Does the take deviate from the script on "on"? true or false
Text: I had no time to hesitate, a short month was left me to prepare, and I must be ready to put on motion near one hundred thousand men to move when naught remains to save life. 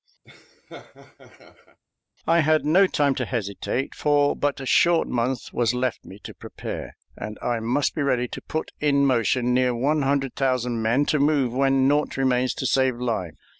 true